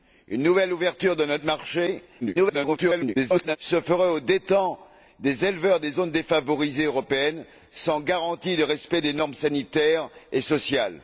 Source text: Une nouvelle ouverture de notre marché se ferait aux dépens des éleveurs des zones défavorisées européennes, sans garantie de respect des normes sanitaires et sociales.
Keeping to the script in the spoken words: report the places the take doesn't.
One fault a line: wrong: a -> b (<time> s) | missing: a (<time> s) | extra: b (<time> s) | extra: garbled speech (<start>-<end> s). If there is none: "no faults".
extra: garbled speech (2.2-3.6 s)